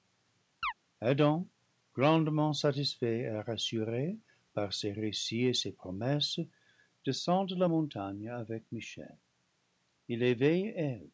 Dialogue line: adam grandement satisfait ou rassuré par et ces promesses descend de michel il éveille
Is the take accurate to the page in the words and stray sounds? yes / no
no